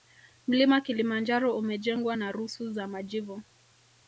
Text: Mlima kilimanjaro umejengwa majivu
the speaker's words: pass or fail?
fail